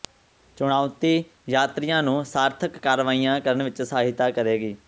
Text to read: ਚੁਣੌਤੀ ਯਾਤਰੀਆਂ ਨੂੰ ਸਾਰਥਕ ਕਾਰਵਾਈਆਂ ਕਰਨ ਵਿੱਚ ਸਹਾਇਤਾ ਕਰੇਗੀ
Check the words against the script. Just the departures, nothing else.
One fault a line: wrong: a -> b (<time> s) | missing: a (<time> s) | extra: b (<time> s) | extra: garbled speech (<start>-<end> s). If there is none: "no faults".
no faults